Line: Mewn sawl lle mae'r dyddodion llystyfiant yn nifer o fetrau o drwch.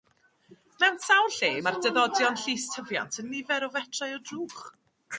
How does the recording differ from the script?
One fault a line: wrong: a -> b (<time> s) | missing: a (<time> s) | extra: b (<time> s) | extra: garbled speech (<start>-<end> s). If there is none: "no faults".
no faults